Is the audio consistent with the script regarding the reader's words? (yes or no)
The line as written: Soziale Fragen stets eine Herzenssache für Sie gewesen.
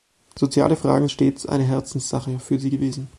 yes